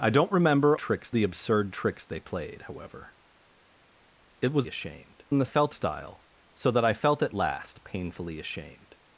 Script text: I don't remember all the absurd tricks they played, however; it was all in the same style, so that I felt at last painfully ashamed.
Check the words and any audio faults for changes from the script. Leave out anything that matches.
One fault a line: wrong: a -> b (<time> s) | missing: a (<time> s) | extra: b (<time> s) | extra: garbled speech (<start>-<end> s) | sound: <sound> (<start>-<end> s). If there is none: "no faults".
wrong: all -> tricks (0.8 s)
wrong: all -> ashamed (4.6 s)
wrong: same -> felt (5.4 s)